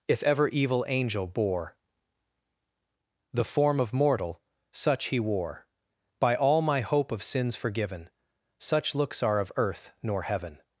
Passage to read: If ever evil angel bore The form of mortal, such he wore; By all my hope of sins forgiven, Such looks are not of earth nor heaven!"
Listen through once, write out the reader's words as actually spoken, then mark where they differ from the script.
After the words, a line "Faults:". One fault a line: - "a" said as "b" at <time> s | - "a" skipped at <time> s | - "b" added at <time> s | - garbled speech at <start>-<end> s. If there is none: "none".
If ever evil angel bore The form of mortal, such he wore; By all my hope of sins forgiven, Such looks are of earth nor heaven!"
Faults:
- "not" skipped at 9.4 s